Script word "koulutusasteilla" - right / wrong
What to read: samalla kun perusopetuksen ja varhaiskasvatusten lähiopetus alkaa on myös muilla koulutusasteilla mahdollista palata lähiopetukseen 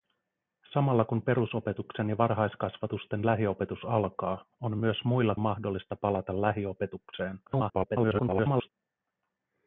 wrong